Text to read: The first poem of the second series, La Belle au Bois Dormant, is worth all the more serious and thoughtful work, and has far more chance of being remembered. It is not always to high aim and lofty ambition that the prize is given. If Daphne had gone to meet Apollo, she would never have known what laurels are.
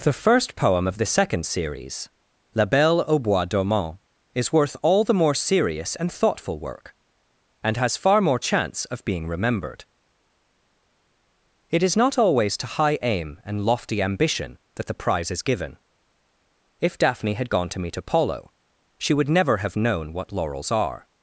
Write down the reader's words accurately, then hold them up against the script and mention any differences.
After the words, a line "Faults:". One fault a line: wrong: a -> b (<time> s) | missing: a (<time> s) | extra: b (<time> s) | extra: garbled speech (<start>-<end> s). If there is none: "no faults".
The first poem of the second series, La Belle au Bois Dormant, is worth all the more serious and thoughtful work, and has far more chance of being remembered. It is not always to high aim and lofty ambition that the prize is given. If Daphne had gone to meet Apollo, she would never have known what laurels are.
Faults:
no faults